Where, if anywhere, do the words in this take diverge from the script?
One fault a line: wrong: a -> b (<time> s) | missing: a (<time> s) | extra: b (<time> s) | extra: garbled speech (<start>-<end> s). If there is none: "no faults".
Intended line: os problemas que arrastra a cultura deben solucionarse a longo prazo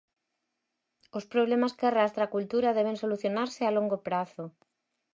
no faults